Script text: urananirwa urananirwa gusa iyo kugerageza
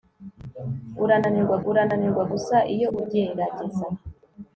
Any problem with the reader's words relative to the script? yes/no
no